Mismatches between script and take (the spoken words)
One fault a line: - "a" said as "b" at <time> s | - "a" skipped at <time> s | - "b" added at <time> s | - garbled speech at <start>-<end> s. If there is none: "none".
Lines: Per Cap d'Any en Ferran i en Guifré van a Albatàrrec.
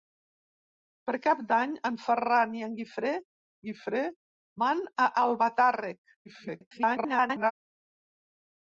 - "Guifré" added at 3.7 s
- garbled speech at 6.3-7.5 s